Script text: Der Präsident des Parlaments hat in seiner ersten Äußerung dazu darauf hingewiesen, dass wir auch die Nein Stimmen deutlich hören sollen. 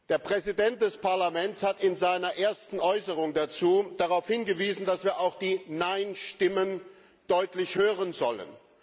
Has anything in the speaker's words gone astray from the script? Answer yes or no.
no